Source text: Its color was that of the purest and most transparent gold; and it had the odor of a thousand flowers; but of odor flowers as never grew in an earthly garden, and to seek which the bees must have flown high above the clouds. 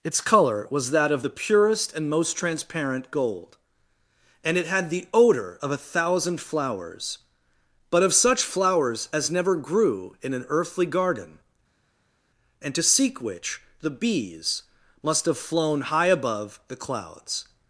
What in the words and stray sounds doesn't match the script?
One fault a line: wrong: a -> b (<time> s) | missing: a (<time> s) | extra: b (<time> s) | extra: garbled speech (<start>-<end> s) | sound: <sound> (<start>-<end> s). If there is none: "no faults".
wrong: odor -> such (8.1 s)